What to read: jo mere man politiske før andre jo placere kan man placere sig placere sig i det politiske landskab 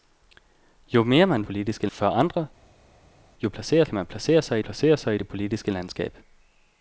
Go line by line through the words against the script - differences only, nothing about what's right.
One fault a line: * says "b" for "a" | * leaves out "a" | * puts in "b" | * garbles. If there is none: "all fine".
all fine